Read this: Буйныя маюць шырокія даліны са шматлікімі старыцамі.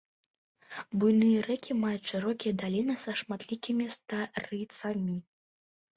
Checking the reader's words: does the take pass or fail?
fail